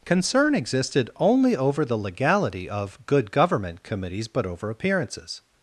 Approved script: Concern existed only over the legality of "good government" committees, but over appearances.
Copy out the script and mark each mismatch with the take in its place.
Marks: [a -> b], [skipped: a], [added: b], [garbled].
Concern existed only over the legality of "good government" committees, but over appearances.